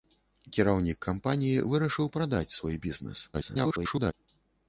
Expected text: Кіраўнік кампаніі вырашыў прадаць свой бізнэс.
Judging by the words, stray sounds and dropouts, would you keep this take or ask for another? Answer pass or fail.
fail